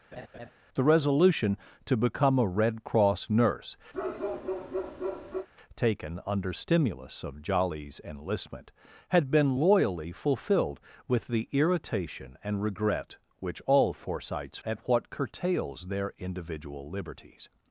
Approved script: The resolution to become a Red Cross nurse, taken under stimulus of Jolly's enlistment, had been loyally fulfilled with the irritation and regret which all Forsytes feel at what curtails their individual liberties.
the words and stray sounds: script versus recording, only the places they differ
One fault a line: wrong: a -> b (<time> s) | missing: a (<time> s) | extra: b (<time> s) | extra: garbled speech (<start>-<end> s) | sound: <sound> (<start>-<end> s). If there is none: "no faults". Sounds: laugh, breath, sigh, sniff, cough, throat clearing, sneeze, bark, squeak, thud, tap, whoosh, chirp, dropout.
sound: laugh (0.1-0.5 s)
sound: bark (3.9-5.5 s)
missing: feel (14.6 s)